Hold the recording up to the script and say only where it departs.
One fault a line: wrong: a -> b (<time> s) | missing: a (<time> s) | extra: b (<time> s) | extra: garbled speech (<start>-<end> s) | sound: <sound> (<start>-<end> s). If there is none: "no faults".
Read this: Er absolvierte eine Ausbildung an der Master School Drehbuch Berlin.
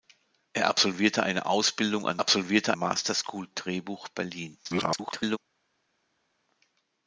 wrong: der -> absolvierte (2.2 s)
extra: garbled speech (4.6-5.4 s)